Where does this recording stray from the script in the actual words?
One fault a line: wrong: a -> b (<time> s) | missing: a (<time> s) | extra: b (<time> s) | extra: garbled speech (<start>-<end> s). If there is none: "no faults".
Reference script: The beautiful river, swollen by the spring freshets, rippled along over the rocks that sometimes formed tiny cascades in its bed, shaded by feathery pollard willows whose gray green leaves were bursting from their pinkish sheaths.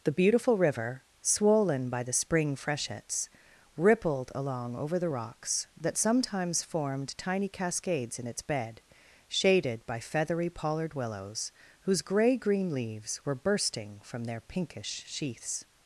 no faults